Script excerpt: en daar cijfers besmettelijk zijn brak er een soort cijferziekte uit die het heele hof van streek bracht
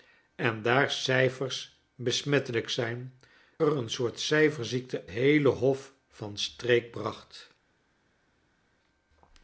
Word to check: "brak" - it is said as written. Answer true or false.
false